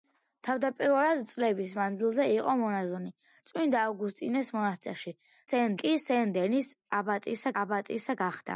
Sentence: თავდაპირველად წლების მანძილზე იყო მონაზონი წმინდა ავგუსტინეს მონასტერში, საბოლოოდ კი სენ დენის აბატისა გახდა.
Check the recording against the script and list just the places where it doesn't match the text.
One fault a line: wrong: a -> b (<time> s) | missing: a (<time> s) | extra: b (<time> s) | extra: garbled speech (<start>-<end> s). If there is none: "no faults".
wrong: საბოლოოდ -> სენ (5.5 s)
extra: აბატისა (7.6 s)